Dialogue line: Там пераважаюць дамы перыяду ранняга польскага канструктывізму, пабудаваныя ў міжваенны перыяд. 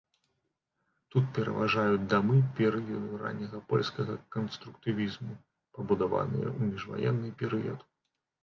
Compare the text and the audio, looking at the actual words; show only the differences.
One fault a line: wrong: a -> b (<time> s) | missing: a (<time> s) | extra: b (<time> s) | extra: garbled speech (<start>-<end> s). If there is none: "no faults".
wrong: Там -> Тут (1.1 s)